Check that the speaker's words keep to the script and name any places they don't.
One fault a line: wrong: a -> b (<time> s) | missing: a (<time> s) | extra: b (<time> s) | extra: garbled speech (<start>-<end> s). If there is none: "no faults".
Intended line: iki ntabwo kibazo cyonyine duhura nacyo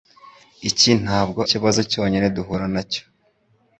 no faults